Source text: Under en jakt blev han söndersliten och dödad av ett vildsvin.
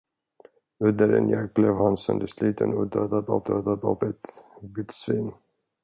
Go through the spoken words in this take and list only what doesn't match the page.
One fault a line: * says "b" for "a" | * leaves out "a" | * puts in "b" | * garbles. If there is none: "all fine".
* puts in "dödad av"